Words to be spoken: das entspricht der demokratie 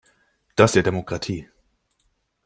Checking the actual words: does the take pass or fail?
fail